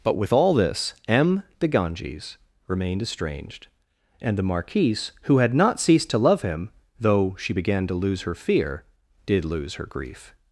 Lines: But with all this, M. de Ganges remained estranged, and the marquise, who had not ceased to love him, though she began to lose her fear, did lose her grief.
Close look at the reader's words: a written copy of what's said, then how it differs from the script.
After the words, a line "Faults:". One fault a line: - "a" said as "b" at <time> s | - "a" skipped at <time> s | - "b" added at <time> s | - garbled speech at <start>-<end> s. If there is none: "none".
But with all this, M. de Ganges remained estranged, and the marquise, who had not ceased to love him, though she began to lose her fear, did lose her grief.
Faults:
none